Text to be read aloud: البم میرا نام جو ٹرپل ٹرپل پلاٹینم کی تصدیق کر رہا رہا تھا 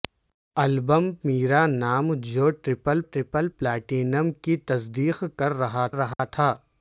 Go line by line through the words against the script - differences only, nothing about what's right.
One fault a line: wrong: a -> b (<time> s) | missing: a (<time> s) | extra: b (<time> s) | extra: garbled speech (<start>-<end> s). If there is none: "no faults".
no faults